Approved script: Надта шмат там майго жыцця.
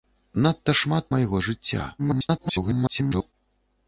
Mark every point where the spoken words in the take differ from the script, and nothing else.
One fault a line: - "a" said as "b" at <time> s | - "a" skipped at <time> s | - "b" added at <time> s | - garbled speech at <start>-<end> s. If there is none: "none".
- "там" skipped at 1.1 s
- garbled speech at 2.0-3.3 s